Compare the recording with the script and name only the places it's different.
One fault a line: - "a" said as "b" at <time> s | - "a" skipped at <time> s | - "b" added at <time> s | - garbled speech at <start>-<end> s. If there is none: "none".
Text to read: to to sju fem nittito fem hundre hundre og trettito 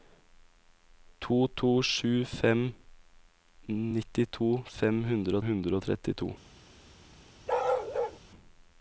none